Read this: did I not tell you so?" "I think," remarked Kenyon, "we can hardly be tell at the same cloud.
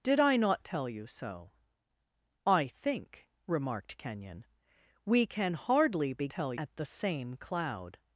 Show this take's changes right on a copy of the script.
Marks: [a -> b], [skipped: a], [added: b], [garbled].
did I not tell you so?" "I think," remarked Kenyon, "we can hardly be tell at the same cloud.